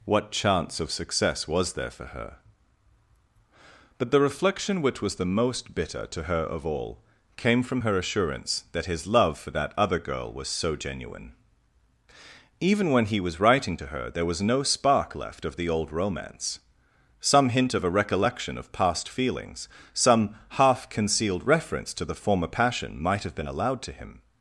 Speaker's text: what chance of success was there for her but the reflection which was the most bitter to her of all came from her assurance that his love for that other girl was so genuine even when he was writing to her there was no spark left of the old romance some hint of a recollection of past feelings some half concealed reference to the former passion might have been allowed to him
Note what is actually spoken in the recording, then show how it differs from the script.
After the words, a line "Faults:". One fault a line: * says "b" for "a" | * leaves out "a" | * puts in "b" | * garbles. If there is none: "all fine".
what chance of success was there for her but the reflection which was the most bitter to her of all came from her assurance that his love for that other girl was so genuine even when he was writing to her there was no spark left of the old romance some hint of a recollection of past feelings some half concealed reference to the former passion might have been allowed to him
Faults:
all fine